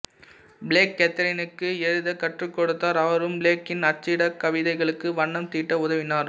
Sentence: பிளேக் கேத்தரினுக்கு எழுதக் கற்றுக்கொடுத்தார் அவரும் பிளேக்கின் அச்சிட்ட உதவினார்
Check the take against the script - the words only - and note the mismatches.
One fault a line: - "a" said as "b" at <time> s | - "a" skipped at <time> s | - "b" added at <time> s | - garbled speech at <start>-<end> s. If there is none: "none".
- "கவிதைகளுக்கு வண்ணம் தீட்ட" added at 4.4 s